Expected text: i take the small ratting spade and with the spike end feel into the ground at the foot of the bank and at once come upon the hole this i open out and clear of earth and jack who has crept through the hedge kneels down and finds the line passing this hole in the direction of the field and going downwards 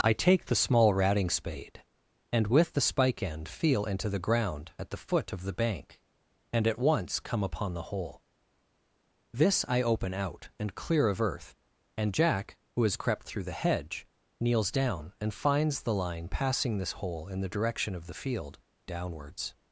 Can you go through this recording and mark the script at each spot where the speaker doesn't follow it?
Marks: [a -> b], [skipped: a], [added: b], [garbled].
i take the small ratting spade and with the spike end feel into the ground at the foot of the bank and at once come upon the hole this i open out and clear of earth and jack who has crept through the hedge kneels down and finds the line passing this hole in the direction of the field [skipped: and going] downwards